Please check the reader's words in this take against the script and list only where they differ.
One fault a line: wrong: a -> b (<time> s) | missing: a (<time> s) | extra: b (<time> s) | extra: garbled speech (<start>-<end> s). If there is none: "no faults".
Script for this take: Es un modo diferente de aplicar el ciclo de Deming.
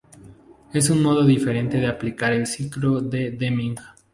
no faults